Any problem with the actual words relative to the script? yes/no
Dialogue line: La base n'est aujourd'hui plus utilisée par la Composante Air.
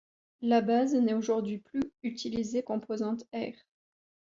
yes